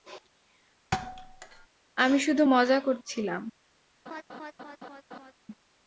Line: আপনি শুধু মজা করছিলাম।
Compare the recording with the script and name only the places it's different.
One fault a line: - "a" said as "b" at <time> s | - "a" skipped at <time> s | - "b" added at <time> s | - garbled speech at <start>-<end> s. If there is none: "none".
- "আপনি" said as "আমি" at 2.0 s